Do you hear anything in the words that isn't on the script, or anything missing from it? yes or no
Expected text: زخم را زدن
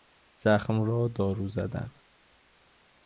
yes